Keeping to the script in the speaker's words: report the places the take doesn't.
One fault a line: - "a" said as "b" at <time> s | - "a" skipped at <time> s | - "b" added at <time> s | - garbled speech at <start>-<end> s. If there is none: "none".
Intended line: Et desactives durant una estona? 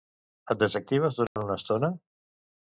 none